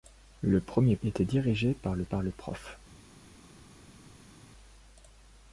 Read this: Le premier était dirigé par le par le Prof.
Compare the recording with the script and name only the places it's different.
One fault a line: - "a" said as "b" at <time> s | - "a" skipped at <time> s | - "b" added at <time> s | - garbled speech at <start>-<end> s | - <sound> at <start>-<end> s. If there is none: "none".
none